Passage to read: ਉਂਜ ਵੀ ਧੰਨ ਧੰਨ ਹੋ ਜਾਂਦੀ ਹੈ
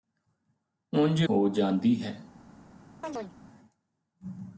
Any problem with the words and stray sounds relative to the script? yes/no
yes